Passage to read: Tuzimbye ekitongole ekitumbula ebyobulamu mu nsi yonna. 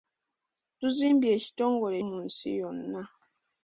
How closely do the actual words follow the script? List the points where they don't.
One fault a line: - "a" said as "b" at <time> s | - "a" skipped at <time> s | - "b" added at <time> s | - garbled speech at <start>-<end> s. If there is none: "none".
- "ekitumbula ebyobulamu" skipped at 1.9 s